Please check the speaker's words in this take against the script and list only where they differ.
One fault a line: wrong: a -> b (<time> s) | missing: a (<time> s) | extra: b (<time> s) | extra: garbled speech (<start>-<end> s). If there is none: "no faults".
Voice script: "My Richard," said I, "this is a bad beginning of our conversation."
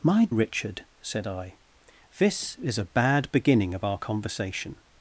no faults